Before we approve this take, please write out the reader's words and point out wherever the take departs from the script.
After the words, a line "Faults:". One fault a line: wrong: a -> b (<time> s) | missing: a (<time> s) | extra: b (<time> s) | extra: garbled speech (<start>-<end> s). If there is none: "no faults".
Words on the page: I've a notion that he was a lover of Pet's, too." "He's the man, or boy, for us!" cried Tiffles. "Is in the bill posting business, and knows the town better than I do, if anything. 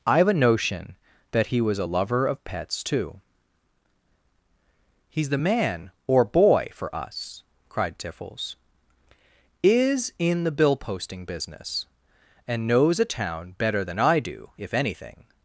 I've a notion that he was a lover of Pet's, too." "He's the man, or boy, for us!" cried Tiffles. "Is in the bill posting business, and knows a town better than I do, if anything.
Faults:
wrong: the -> a (13.0 s)